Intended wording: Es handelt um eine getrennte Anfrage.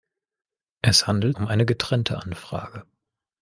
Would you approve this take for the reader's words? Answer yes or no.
yes